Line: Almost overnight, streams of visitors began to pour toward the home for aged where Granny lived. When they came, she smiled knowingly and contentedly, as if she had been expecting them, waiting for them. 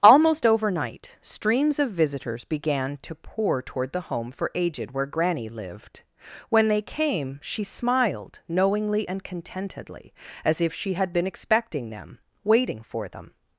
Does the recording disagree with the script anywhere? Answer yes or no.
no